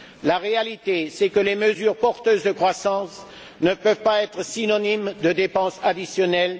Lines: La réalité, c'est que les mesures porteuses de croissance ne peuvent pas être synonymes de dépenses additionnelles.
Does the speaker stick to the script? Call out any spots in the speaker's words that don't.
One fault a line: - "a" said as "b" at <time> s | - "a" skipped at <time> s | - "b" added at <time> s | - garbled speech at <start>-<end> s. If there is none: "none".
none